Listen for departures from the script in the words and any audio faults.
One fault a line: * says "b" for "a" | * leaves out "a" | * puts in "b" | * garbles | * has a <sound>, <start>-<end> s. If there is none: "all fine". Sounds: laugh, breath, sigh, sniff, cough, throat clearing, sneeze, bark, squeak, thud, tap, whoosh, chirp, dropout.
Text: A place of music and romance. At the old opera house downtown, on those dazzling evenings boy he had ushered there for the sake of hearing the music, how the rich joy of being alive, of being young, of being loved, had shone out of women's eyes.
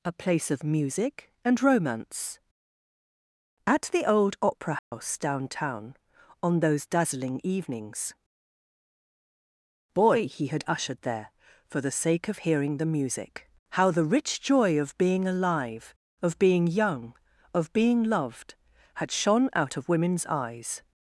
* has a dropout, 4.8-4.9 s